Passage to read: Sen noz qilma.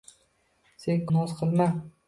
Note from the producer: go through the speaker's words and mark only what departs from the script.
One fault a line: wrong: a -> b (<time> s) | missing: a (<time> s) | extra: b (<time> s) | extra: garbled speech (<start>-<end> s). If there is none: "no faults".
no faults